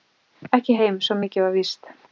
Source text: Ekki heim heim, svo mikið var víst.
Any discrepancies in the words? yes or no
yes